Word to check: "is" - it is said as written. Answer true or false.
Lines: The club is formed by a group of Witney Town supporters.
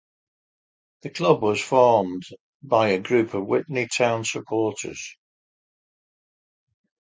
false